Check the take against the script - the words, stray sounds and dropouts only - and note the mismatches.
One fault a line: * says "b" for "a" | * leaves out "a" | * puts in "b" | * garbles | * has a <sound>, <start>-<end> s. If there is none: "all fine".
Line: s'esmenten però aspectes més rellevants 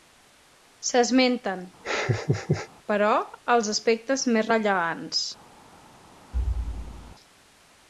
* has a laugh, 1.8-2.7 s
* puts in "els"
* has a thud, 6.3-7.1 s